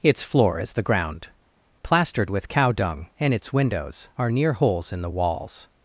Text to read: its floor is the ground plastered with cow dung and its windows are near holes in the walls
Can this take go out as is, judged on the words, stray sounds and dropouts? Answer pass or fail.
pass